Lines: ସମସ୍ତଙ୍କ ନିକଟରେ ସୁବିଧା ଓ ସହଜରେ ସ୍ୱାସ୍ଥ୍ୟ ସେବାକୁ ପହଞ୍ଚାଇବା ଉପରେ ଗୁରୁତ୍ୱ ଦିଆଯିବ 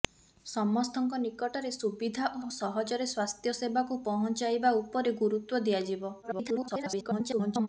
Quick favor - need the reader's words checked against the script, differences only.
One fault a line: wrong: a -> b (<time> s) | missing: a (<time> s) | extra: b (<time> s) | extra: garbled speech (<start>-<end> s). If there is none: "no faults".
extra: ଓ (2.4 s)
extra: garbled speech (6.2-7.7 s)